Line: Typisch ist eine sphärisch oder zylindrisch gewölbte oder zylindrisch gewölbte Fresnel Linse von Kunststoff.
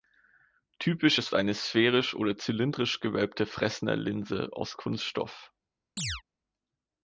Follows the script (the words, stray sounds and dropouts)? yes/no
no